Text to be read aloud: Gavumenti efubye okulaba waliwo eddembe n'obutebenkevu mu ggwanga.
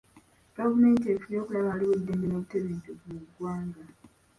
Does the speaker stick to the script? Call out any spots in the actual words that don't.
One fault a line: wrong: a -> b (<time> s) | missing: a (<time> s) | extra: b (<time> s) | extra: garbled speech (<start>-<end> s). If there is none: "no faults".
no faults